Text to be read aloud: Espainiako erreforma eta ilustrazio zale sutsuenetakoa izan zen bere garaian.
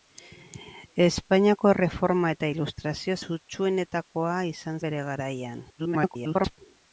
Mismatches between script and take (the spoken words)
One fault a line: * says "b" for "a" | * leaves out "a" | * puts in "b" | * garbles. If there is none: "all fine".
* leaves out "zale"
* leaves out "zen"
* garbles